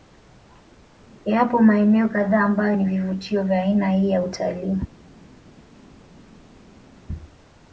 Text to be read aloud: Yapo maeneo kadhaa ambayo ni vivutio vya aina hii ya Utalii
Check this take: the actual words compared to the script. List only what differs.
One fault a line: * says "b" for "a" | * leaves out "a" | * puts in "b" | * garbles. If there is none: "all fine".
all fine